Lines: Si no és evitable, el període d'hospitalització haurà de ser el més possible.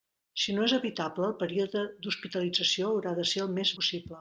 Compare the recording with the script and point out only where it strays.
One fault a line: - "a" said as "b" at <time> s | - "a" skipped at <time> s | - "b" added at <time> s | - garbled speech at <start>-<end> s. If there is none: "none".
none